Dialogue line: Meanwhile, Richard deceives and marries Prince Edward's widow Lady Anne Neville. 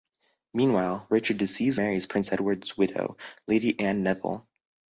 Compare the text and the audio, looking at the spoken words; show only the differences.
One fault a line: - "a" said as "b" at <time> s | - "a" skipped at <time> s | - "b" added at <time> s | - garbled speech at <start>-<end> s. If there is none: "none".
- "and" skipped at 1.8 s